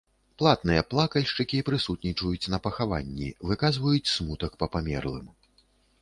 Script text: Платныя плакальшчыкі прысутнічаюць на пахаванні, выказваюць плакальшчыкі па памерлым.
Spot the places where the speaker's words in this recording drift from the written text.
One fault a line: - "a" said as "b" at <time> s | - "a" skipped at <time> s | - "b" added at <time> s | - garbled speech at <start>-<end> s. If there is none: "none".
- "плакальшчыкі" said as "смутак" at 4.1 s